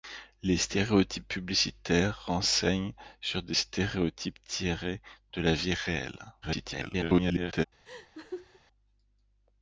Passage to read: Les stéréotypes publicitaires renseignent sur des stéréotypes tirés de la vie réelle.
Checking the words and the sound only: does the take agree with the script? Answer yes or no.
no